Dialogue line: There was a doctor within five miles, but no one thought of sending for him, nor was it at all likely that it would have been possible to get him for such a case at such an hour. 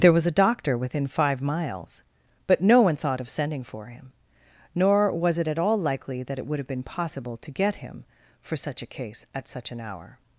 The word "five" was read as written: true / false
true